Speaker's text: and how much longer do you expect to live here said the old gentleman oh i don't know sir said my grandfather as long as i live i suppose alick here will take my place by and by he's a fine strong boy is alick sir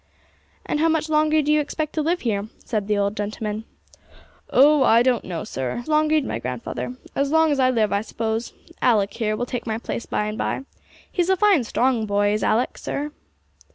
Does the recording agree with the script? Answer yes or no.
no